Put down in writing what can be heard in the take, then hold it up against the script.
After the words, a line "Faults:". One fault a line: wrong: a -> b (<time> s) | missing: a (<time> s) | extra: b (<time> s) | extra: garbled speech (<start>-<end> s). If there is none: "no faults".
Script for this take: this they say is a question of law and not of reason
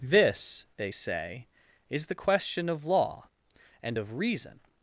this they say is the question of law and of reason
Faults:
wrong: a -> the (2.1 s)
missing: not (4.0 s)